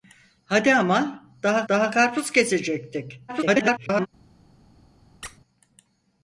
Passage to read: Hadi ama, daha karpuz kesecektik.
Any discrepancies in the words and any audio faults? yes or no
yes